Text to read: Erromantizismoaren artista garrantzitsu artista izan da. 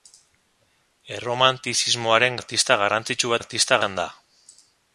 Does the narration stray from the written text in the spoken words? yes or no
no